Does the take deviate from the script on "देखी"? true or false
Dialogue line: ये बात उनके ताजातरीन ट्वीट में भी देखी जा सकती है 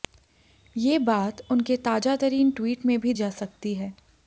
true